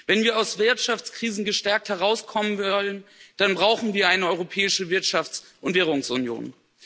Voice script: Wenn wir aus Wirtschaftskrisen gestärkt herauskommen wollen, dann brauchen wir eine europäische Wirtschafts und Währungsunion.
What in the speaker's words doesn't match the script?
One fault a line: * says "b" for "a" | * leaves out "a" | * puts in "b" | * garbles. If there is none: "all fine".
all fine